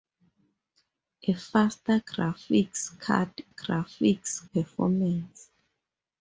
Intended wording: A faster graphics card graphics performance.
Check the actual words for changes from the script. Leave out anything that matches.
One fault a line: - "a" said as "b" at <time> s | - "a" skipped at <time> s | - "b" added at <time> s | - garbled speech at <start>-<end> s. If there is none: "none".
none